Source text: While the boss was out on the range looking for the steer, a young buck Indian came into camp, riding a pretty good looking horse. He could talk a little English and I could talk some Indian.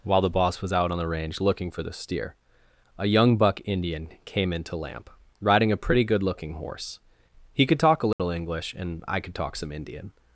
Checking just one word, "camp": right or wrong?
wrong